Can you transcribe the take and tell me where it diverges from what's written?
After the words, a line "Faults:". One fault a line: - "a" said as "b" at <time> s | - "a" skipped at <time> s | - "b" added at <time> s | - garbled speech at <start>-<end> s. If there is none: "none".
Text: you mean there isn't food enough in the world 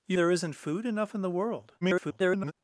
you there isn't food enough in the world [garbled]
Faults:
- "mean" skipped at 0.2 s
- garbled speech at 1.8-2.5 s